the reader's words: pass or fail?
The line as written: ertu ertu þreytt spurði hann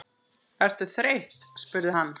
fail